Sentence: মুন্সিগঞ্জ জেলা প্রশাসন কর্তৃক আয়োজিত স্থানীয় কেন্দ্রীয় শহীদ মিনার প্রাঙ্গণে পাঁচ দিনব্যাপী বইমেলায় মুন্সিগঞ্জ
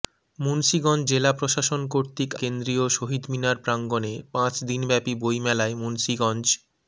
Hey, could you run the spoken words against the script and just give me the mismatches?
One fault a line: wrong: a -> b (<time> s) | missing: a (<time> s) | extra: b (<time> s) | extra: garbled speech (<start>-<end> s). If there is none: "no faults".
missing: আয়োজিত স্থানীয় (2.3 s)